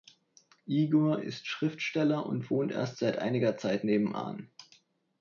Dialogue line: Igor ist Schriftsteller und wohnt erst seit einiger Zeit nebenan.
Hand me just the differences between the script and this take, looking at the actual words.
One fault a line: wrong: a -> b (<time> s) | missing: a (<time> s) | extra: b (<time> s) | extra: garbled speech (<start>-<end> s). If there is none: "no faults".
no faults